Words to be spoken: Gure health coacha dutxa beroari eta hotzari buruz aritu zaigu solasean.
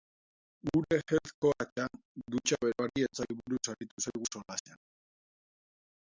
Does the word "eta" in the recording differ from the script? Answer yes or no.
yes